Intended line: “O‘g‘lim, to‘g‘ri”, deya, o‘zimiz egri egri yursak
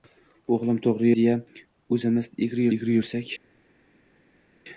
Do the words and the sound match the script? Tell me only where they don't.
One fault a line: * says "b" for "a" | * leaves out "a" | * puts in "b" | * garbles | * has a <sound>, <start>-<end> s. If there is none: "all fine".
all fine